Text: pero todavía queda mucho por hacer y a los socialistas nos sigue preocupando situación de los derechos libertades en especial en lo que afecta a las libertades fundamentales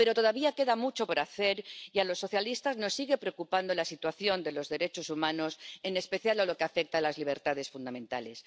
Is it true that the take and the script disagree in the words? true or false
true